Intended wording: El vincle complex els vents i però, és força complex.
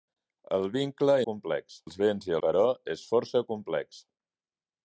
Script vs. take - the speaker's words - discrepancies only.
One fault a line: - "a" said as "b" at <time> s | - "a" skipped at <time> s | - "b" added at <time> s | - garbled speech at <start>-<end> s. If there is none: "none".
none